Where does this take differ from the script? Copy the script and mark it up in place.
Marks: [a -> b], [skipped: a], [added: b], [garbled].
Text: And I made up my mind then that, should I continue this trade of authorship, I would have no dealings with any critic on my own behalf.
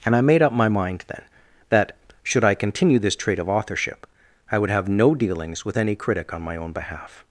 And I made up my mind then that, should I continue this trade of authorship, I would have no dealings with any critic on my own behalf.